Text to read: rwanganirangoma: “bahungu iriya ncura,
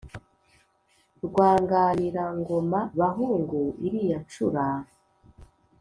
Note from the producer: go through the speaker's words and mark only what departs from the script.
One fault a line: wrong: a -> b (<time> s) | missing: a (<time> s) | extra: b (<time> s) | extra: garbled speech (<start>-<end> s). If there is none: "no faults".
no faults